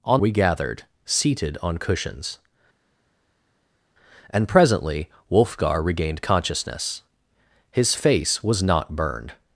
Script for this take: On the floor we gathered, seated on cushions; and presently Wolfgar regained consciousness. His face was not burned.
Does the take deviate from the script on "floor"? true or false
true